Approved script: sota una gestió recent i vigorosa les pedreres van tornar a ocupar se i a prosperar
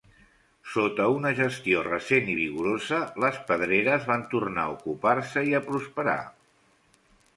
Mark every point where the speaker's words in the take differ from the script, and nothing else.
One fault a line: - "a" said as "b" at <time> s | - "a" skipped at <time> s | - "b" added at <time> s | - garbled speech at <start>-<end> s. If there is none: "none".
none